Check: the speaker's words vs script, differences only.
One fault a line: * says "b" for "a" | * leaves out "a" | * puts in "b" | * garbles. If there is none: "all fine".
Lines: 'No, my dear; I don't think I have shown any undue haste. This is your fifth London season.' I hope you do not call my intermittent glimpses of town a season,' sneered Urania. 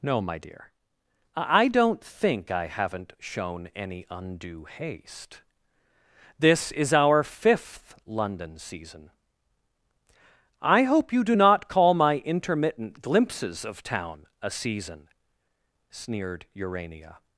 * says "haven't" for "have"
* says "our" for "your"